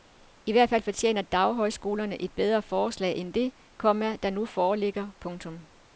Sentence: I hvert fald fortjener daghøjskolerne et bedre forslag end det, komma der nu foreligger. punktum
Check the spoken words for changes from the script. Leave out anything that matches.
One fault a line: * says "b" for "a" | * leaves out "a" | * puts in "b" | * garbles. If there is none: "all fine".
all fine